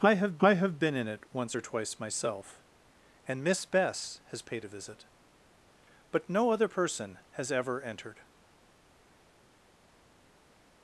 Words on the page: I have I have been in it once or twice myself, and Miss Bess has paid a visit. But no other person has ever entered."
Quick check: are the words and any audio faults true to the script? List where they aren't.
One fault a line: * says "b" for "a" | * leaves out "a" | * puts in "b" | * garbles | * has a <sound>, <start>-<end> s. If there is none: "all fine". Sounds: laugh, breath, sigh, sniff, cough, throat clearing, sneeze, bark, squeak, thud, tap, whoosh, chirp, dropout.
all fine